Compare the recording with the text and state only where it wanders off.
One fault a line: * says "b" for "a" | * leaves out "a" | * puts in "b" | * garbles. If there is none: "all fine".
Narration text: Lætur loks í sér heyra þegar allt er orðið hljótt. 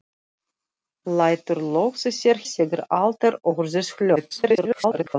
* leaves out "heyra"
* garbles